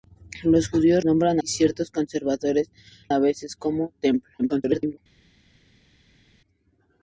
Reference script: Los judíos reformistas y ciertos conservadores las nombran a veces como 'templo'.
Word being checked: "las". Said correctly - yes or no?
no